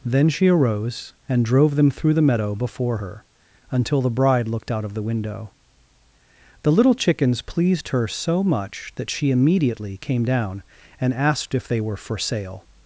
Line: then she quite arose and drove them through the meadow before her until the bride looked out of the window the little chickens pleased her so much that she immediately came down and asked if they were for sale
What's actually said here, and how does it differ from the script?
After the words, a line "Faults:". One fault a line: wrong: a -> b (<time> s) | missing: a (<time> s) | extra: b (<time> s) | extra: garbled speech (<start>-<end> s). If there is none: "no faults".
then she arose and drove them through the meadow before her until the bride looked out of the window the little chickens pleased her so much that she immediately came down and asked if they were for sale
Faults:
missing: quite (0.5 s)